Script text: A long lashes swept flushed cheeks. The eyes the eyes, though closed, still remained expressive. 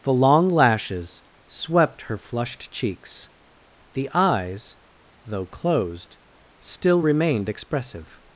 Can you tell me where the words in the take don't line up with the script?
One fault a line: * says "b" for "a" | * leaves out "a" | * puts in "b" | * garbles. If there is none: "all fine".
* says "The" for "A"
* puts in "her"
* leaves out "the eyes"